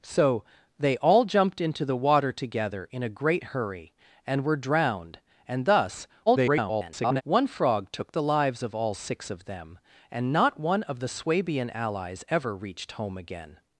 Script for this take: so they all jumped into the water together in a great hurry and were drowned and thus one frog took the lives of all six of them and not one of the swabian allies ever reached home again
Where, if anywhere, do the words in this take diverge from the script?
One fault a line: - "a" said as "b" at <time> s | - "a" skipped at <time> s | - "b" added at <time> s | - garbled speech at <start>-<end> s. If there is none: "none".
- garbled speech at 6.3-7.2 s